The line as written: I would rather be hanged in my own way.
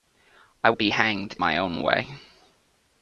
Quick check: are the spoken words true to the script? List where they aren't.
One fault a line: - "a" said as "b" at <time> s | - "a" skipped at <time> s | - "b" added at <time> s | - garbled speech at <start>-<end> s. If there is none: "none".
- "would rather" skipped at 0.7 s
- "in" skipped at 1.4 s